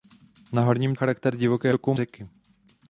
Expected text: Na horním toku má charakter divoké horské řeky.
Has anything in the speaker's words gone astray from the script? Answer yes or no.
yes